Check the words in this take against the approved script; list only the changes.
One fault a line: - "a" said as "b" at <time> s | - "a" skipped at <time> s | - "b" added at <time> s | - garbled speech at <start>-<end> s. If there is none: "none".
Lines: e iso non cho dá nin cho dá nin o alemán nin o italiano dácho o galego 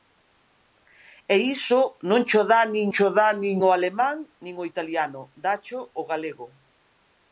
none